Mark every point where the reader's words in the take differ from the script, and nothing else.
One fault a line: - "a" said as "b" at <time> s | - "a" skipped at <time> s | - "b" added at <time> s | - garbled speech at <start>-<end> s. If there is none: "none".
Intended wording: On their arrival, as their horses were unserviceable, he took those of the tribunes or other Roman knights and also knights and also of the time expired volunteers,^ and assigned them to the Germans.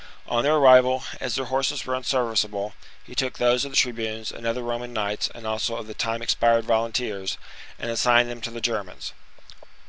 - "or" said as "and" at 4.3 s
- "knights and also" skipped at 5.8 s